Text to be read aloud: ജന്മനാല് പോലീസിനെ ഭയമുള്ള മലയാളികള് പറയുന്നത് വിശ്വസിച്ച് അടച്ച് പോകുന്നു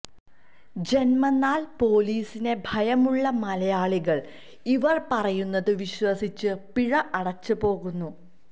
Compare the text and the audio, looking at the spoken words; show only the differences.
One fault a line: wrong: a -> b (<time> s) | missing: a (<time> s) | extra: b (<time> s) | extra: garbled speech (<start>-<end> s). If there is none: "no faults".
extra: ഇവര് (4.7 s)
extra: പിഴ (6.7 s)